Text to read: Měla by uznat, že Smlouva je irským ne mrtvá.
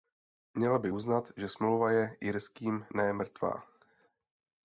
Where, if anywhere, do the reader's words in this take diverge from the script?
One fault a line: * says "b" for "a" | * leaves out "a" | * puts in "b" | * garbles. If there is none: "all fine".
all fine